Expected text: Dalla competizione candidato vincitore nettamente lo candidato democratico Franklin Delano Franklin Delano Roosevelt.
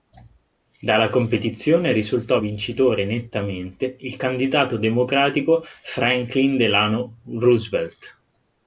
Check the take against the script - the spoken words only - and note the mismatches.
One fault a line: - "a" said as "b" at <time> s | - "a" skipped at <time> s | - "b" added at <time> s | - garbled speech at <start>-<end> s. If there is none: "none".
- "candidato" said as "risultò" at 1.9 s
- "lo" said as "il" at 4.0 s
- "Franklin Delano" skipped at 7.2 s